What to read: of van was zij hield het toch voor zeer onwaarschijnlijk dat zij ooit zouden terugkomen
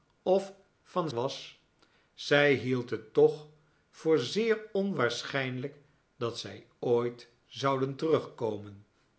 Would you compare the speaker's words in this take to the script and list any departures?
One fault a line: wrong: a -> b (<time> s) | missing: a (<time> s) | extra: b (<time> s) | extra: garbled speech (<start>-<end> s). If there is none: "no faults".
no faults